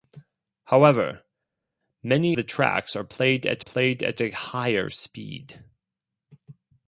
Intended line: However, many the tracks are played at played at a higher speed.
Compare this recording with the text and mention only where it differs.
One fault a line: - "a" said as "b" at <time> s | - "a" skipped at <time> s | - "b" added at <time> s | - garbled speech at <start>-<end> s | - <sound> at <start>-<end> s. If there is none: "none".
none